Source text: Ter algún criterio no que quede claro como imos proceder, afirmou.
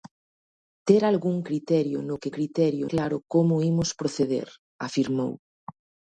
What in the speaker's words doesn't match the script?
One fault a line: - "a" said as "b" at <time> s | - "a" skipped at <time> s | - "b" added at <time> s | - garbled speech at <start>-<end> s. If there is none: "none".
- "quede" said as "criterio" at 2.3 s